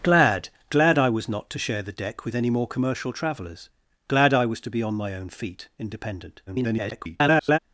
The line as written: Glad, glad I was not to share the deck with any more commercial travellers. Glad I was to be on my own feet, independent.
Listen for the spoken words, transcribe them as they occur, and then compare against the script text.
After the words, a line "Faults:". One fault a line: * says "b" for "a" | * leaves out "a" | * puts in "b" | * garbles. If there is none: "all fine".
Glad, glad I was not to share the deck with any more commercial travellers. Glad I was to be on my own feet, independent. [garbled]
Faults:
* garbles